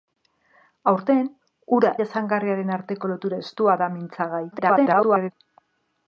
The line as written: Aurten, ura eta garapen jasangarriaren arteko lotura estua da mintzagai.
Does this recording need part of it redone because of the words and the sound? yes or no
yes